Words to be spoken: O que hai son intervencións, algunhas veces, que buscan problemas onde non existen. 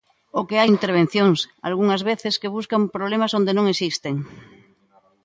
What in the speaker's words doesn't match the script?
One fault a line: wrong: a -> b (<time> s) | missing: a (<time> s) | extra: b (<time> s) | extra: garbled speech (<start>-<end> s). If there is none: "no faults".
missing: son (0.7 s)